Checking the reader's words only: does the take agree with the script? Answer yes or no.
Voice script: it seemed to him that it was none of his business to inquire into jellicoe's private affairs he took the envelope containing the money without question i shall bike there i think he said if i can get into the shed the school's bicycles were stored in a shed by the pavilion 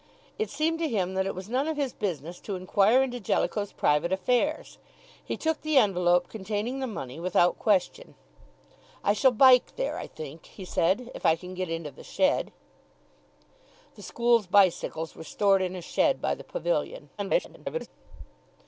no